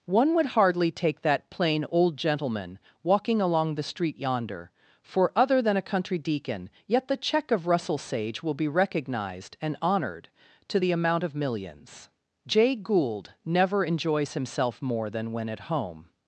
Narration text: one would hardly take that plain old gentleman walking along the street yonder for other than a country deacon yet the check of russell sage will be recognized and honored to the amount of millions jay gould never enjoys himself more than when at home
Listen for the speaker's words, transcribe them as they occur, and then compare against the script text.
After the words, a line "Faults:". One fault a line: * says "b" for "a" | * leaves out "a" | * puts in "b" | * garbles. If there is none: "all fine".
one would hardly take that plain old gentleman walking along the street yonder for other than a country deacon yet the check of russell sage will be recognized and honored to the amount of millions jay gould never enjoys himself more than when at home
Faults:
all fine